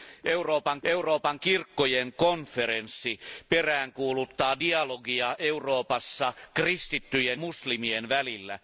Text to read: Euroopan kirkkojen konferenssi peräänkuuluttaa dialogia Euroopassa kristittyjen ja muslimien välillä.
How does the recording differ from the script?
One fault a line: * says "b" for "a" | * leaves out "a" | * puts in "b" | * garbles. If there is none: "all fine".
* puts in "euroopan"
* leaves out "ja"